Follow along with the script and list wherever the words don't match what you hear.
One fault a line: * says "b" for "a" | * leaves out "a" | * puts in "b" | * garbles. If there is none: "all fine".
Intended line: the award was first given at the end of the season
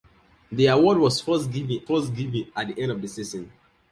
* puts in "first given"